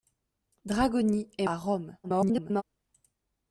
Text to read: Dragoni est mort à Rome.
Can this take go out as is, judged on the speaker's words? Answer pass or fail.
fail